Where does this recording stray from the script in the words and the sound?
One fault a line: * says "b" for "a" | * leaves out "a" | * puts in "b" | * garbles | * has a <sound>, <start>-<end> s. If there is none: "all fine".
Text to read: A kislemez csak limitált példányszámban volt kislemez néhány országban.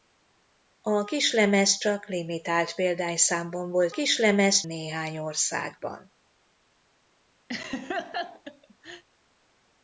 * has a laugh, 7.5-9.0 s